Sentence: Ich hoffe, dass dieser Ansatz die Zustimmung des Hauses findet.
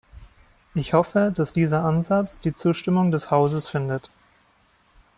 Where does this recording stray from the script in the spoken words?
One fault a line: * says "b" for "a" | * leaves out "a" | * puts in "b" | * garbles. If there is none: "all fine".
all fine